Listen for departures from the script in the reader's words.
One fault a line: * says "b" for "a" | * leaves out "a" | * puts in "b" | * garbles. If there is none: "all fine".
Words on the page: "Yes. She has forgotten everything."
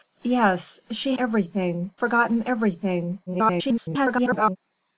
* says "everything" for "has"
* garbles